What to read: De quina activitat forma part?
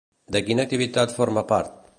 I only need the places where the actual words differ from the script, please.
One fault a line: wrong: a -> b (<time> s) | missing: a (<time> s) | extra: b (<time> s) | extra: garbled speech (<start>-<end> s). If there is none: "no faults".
no faults